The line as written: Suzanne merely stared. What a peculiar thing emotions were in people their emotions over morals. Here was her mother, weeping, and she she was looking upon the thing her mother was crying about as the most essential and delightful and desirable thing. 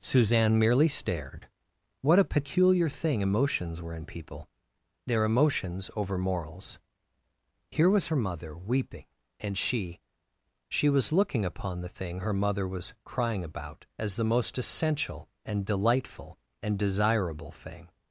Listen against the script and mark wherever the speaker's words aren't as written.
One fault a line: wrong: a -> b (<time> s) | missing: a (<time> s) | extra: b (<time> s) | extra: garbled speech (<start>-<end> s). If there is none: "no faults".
no faults